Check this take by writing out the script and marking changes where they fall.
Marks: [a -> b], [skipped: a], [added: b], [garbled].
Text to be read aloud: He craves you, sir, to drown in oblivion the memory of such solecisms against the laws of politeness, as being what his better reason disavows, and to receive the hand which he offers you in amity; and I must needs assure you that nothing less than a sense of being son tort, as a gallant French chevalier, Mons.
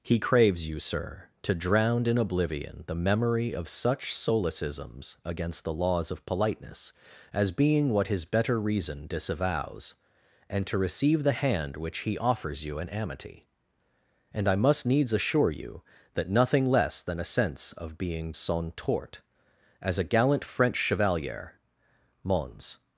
He craves you, sir, to drown in oblivion the memory of such solecisms against the laws of politeness, as being what his better reason disavows, and to receive the hand which he offers you in amity; and I must needs assure you that nothing less than a sense of being son tort, as a gallant French chevalier, Mons.